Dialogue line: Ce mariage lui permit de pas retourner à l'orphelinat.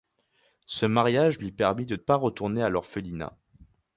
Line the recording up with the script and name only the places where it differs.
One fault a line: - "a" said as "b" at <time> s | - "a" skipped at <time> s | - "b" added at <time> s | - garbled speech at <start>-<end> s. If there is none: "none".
none